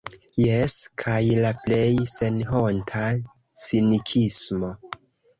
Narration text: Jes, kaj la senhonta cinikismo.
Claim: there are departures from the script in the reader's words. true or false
true